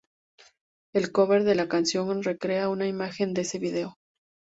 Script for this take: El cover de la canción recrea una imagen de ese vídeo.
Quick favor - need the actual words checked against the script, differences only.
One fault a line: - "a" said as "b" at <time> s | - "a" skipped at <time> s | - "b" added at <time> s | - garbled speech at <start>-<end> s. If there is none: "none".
none